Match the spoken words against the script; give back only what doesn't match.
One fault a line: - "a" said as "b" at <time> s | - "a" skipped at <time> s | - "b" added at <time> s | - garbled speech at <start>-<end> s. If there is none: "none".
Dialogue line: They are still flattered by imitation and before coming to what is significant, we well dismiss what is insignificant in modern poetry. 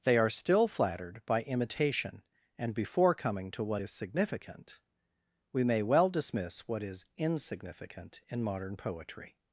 - "may" added at 5.6 s